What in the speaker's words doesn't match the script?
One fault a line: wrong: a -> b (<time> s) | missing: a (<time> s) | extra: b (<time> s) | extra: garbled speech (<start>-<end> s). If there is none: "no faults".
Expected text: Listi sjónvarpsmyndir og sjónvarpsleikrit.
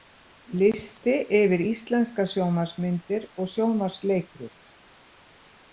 extra: yfir íslenskar (1.4 s)